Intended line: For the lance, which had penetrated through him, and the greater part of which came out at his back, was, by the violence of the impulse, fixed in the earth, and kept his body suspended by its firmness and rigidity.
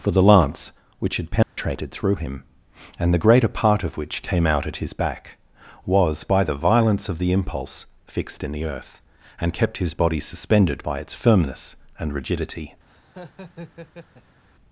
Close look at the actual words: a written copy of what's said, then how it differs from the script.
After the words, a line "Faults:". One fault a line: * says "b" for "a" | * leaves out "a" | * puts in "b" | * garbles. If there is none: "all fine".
For the lance, which had penetrated through him, and the greater part of which came out at his back, was, by the violence of the impulse, fixed in the earth, and kept his body suspended by its firmness and rigidity.
Faults:
all fine